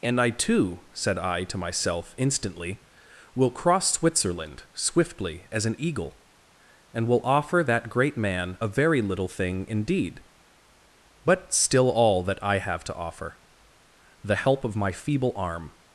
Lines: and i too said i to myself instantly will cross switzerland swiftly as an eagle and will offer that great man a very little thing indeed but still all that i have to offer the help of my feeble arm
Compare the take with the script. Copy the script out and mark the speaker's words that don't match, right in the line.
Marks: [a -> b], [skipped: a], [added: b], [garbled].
and i too said i to myself instantly will cross switzerland swiftly as an eagle and will offer that great man a very little thing indeed but still all that i have to offer the help of my feeble arm